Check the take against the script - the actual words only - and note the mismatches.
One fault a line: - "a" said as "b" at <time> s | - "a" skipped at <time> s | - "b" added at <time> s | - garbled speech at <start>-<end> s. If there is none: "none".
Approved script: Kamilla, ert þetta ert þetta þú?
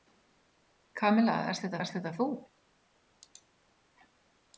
none